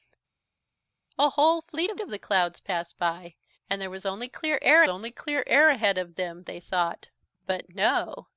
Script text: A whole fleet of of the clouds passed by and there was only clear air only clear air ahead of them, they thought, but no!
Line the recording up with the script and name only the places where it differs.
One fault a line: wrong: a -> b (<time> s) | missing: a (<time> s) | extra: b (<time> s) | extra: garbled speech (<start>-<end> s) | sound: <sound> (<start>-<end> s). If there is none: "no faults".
no faults